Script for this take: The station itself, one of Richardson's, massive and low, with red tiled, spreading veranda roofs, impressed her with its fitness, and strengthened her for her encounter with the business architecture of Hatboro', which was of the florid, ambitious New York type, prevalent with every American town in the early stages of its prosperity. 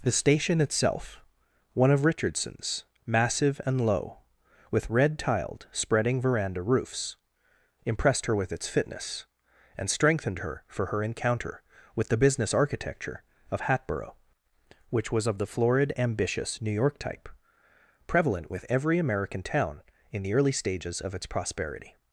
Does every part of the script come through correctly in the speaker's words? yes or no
yes